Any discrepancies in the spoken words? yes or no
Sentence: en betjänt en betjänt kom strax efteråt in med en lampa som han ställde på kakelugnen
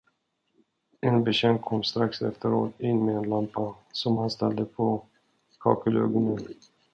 yes